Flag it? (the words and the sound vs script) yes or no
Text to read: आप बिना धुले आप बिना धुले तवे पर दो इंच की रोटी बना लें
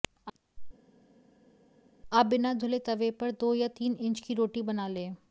yes